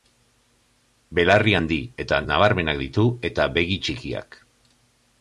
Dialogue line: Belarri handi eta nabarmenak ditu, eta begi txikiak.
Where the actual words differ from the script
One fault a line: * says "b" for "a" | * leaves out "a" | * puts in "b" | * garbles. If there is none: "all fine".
all fine